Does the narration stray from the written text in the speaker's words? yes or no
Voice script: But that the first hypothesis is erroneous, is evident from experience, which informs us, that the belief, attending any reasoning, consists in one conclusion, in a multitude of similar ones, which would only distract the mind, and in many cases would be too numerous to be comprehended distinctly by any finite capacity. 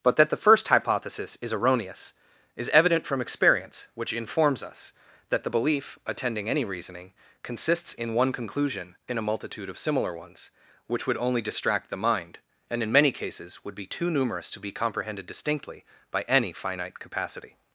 no